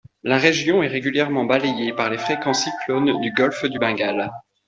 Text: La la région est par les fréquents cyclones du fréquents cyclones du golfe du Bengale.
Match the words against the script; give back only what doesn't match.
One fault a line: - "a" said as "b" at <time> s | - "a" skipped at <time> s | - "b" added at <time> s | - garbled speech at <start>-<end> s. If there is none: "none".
- "la" skipped at 0.4 s
- "régulièrement balayée" added at 0.9 s
- "fréquents cyclones du" skipped at 3.3 s